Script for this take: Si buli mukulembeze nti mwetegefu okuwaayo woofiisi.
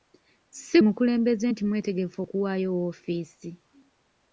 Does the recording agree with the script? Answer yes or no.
no